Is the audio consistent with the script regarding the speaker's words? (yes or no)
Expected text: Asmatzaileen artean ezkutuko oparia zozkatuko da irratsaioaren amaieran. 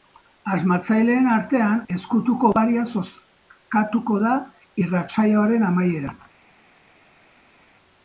yes